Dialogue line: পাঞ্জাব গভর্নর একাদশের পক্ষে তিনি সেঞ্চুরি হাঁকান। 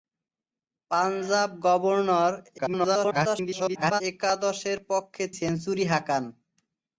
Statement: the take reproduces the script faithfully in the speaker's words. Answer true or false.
false